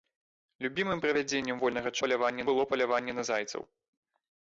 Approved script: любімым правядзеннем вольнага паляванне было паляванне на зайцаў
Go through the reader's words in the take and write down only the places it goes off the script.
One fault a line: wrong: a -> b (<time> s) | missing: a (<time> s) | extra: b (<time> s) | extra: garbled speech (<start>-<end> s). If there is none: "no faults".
no faults